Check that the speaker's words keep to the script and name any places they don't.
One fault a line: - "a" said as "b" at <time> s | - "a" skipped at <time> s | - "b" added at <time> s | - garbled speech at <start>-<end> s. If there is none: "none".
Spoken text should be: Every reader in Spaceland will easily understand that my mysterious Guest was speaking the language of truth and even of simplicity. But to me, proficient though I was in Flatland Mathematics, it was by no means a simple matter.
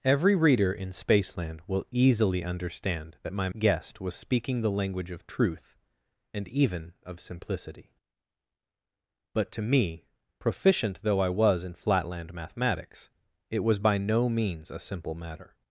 - "mysterious" skipped at 3.5 s